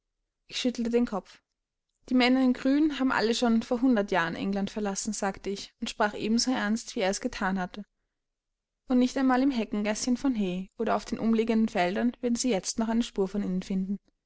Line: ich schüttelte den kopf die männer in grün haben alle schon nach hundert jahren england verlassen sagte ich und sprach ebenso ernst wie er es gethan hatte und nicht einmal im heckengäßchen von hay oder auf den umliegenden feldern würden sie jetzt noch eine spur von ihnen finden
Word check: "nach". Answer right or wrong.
wrong